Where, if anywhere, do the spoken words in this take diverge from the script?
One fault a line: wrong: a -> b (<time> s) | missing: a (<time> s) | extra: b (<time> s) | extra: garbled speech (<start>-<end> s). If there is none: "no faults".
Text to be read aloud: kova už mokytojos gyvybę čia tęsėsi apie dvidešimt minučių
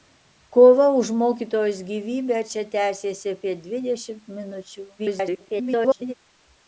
extra: garbled speech (5.0-6.1 s)